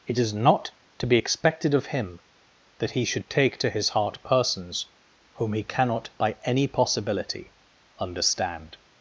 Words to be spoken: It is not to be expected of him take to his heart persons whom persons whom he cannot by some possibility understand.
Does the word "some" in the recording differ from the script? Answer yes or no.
yes